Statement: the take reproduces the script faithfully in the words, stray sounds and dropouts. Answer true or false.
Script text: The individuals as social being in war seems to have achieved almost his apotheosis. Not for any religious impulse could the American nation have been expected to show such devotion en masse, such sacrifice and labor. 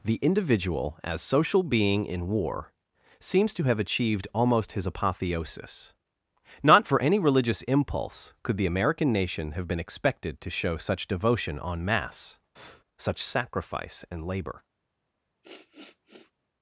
false